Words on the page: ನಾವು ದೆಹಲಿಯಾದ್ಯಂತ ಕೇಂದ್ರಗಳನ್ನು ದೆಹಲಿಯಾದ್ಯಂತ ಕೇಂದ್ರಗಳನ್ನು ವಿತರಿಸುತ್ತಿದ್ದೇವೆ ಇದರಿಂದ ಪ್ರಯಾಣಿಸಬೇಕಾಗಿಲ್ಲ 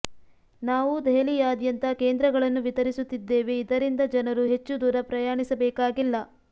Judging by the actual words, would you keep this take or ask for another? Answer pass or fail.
fail